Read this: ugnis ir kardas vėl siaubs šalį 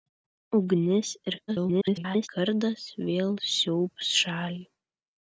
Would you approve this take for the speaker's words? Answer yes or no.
no